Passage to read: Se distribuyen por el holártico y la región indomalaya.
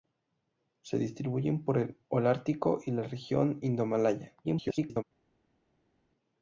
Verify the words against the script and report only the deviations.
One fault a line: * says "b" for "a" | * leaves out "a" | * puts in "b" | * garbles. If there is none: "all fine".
* garbles